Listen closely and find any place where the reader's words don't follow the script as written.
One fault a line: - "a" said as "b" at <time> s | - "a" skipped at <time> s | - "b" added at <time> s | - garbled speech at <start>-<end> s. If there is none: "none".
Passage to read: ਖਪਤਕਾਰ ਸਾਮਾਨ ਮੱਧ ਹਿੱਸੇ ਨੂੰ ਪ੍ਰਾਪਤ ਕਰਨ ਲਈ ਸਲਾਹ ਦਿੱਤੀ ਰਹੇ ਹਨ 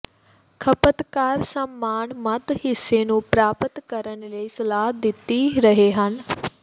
none